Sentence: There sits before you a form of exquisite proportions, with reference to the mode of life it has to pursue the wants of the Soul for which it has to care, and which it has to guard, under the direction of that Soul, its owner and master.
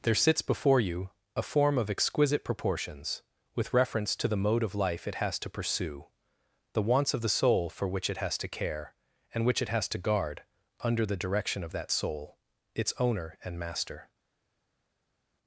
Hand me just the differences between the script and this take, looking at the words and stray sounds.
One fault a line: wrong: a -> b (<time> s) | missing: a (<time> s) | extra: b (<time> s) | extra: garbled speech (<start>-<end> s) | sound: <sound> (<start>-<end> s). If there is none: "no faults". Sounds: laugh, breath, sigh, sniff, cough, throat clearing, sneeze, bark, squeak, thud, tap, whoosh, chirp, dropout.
no faults